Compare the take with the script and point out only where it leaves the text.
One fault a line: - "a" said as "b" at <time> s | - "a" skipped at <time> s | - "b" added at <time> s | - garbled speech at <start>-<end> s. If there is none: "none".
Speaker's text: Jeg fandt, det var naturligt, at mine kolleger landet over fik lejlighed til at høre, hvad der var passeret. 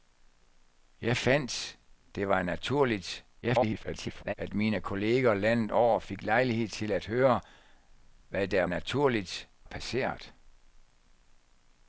- garbled speech at 3.4-4.3 s
- "var" said as "naturligt" at 8.7 s